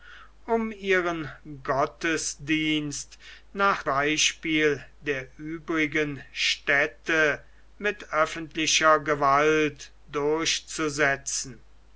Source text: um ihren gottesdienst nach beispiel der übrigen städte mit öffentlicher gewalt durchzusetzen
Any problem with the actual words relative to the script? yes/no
no